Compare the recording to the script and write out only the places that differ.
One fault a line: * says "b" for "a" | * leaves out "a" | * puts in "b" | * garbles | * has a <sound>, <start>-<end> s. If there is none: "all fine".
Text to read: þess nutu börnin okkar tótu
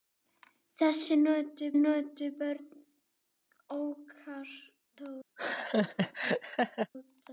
* puts in "nutu"
* has a laugh, 5.4-6.9 s